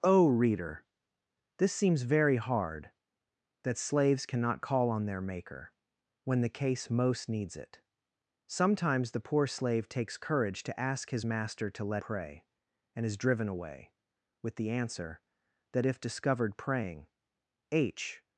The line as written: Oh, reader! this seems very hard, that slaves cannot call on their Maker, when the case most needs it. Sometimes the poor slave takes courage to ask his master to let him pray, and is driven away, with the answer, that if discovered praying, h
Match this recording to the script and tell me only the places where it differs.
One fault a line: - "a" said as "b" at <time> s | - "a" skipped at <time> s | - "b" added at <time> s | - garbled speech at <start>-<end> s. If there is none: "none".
- "him" skipped at 12.0 s